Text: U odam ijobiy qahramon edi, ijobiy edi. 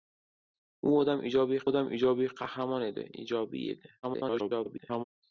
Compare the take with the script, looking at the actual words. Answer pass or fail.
fail